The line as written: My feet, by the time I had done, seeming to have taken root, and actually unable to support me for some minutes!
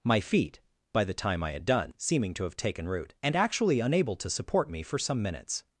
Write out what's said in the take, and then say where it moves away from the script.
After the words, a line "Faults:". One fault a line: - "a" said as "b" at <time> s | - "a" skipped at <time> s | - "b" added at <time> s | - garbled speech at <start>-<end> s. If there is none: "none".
My feet, by the time I had done, seeming to have taken root, and actually unable to support me for some minutes!
Faults:
none